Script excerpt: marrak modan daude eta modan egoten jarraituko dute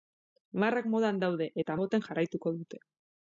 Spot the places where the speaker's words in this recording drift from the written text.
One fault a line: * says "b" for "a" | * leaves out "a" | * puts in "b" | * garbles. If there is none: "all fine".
* leaves out "modan"